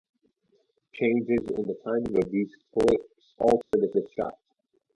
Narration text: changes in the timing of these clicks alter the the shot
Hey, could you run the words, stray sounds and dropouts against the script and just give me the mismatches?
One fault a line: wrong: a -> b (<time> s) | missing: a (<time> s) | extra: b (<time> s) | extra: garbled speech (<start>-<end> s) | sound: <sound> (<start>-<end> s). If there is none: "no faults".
sound: dropout (3.6-3.7 s)